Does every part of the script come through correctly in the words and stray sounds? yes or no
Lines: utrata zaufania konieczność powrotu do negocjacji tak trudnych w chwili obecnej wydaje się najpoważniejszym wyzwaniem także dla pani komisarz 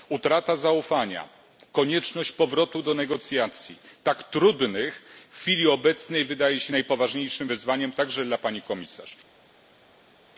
yes